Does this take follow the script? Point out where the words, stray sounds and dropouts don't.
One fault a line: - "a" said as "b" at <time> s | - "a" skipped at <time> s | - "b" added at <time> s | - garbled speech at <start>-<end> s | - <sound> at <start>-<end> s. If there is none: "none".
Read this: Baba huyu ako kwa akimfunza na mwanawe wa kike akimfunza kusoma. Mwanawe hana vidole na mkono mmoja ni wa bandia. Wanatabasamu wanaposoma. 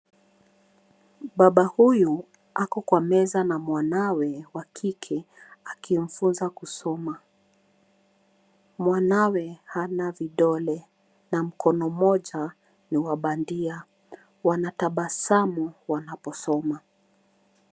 - "akimfunza" said as "meza" at 3.0 s